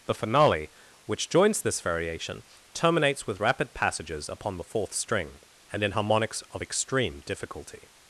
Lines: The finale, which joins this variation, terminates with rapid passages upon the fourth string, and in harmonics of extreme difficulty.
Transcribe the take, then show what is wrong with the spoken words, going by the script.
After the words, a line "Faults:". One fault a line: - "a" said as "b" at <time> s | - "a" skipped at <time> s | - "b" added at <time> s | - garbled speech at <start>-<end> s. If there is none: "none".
The finale, which joins this variation, terminates with rapid passages upon the fourth string, and in harmonics of extreme difficulty.
Faults:
none